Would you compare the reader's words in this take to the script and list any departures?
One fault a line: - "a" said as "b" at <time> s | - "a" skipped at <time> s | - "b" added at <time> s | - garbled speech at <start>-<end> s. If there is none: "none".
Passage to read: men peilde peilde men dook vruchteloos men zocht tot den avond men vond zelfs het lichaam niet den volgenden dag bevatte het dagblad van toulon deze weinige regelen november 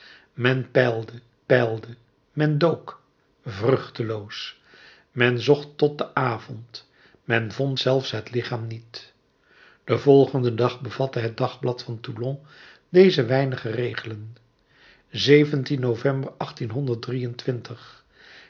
none